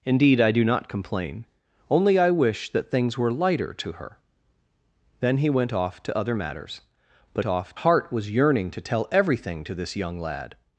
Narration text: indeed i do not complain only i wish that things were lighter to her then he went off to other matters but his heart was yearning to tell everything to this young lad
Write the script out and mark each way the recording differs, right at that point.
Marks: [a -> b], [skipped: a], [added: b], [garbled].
indeed i do not complain only i wish that things were lighter to her then he went off to other matters but [his -> off] heart was yearning to tell everything to this young lad